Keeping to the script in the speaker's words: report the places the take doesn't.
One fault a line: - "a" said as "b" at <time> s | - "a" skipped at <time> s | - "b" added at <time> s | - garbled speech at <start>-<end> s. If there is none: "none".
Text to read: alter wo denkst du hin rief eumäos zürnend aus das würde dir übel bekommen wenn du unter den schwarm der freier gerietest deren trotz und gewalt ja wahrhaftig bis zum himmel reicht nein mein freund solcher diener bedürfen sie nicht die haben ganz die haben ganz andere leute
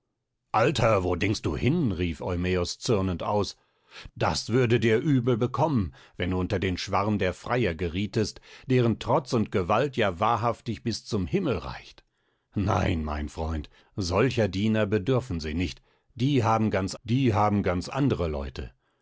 none